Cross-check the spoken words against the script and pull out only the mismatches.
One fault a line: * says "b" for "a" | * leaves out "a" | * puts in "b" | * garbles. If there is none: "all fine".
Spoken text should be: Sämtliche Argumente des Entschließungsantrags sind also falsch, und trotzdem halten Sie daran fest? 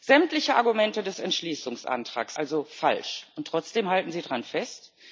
* leaves out "sind"